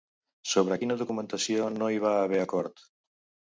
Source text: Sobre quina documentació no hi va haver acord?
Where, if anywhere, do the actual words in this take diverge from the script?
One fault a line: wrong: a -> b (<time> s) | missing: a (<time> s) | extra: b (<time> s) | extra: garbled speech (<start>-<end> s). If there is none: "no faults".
no faults